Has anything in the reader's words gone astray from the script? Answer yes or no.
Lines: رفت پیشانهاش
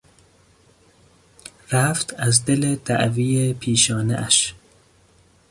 yes